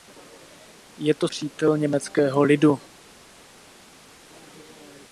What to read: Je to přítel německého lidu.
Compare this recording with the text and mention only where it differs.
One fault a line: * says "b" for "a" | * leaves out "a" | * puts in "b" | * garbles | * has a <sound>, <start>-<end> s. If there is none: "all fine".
all fine